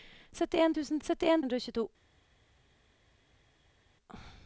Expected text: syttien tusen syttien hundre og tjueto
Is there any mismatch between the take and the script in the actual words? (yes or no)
no